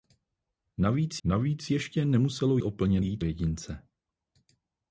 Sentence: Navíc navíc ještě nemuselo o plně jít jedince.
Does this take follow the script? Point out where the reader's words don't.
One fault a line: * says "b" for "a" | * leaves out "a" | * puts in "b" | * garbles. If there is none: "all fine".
all fine